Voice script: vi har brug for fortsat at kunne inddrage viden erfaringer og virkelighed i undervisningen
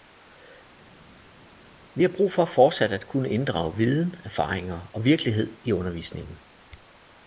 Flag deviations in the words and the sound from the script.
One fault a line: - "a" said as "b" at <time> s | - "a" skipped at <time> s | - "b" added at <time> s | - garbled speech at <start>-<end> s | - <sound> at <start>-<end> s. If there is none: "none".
none